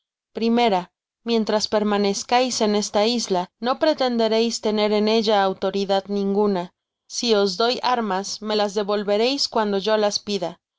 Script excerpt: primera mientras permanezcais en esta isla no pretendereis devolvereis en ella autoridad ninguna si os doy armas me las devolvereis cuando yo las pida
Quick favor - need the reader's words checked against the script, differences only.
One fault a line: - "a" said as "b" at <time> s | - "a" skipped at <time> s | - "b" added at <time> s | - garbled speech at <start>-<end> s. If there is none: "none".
- "devolvereis" said as "tener" at 4.6 s